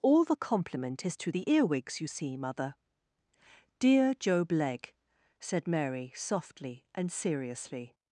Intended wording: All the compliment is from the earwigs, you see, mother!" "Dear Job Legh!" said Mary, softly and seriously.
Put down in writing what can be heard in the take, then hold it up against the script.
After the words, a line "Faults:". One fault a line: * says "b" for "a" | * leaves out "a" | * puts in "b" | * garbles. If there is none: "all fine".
All the compliment is to the earwigs, you see, mother!" "Dear Job Legh!" said Mary, softly and seriously.
Faults:
* says "to" for "from"